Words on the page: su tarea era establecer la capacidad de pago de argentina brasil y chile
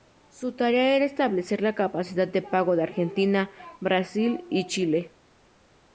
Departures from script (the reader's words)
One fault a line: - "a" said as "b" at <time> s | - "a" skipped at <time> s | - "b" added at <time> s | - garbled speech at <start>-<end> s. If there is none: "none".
none